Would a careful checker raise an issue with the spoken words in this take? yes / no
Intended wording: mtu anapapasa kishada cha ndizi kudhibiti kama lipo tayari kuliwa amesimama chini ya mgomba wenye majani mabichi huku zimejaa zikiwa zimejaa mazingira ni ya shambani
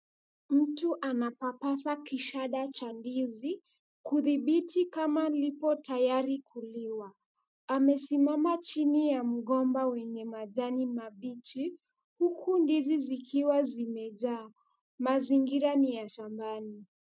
yes